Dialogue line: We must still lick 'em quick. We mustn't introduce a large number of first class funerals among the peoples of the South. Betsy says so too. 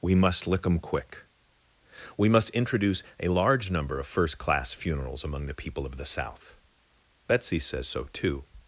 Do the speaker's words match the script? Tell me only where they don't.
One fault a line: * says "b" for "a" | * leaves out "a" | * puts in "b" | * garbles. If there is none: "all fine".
* leaves out "still"
* says "must" for "mustn't"
* says "people" for "peoples"